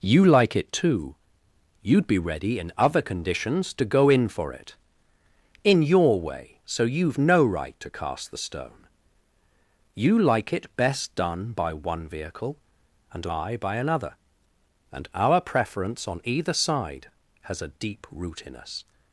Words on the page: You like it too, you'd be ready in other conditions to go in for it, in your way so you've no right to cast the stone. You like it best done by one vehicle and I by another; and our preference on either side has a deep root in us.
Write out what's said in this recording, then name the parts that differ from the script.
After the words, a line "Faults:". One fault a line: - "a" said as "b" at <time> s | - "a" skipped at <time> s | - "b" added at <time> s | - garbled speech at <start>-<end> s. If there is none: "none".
You like it too, you'd be ready in other conditions to go in for it, in your way so you've no right to cast the stone. You like it best done by one vehicle and I by another; and our preference on either side has a deep root in us.
Faults:
none